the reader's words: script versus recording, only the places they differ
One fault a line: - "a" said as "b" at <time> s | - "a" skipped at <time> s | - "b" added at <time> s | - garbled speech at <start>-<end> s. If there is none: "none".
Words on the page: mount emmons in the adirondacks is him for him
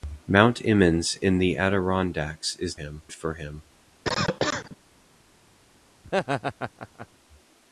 none